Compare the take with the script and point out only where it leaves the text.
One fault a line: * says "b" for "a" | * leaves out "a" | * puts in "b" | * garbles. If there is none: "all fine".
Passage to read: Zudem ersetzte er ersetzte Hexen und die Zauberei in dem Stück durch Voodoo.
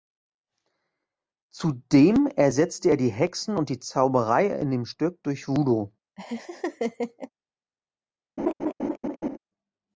* says "die" for "ersetzte"